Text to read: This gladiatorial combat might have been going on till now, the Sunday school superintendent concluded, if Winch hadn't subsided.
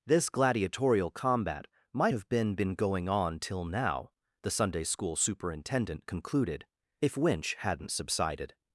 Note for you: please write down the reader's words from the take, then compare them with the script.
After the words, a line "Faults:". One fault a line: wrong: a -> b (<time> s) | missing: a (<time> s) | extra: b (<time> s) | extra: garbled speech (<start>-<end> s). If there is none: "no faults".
This gladiatorial combat might have been been going on till now, the Sunday school superintendent concluded, if Winch hadn't subsided.
Faults:
extra: been (2.5 s)